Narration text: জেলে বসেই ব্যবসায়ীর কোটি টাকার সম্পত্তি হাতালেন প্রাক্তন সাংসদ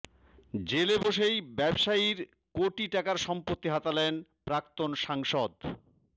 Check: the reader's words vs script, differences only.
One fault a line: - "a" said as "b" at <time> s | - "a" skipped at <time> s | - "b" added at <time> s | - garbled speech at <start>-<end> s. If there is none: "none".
none